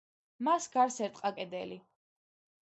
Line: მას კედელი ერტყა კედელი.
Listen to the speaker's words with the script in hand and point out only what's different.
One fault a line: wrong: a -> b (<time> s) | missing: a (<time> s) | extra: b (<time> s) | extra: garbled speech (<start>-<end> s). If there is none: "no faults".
wrong: კედელი -> გარს (0.8 s)